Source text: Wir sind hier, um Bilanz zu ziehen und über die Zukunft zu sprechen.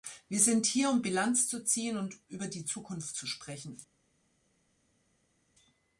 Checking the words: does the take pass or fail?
pass